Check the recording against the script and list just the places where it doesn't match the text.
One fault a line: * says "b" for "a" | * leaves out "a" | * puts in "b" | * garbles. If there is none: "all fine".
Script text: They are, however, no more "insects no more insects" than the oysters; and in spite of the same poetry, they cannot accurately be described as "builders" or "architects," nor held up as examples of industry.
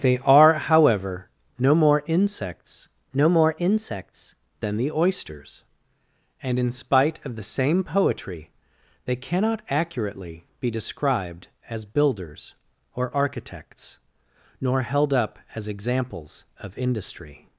all fine